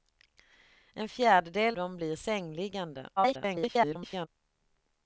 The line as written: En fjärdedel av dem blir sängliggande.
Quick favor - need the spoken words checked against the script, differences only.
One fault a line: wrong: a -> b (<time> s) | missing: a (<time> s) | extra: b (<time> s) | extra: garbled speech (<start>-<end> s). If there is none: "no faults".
missing: av (1.8 s)
extra: garbled speech (3.2-4.3 s)